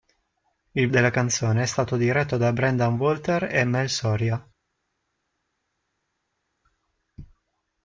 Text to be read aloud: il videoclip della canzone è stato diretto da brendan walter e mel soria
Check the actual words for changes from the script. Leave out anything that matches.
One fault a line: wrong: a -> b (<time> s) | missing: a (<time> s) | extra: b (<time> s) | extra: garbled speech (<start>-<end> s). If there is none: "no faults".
missing: videoclip (0.9 s)